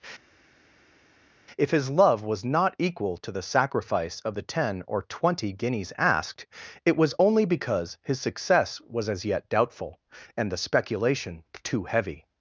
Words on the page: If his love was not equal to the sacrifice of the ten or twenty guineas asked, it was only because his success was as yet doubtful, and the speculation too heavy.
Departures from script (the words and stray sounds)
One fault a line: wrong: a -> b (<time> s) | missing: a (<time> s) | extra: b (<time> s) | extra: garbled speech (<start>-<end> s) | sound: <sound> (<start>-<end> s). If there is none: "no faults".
no faults